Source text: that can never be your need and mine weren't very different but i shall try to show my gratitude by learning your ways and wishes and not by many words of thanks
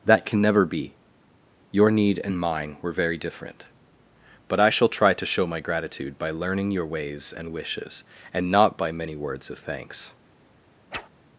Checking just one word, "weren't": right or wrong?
wrong